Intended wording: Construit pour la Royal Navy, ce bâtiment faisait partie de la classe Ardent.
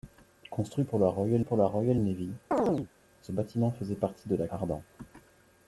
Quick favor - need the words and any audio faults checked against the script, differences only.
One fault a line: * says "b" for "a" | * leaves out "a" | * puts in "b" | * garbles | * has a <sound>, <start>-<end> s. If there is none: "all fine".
* puts in "pour la Royal"
* has a chirp, 2.5-2.9 s
* leaves out "classe"